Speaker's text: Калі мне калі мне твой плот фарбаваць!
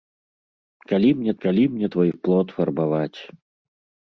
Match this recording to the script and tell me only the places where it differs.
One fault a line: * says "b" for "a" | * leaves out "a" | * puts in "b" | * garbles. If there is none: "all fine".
all fine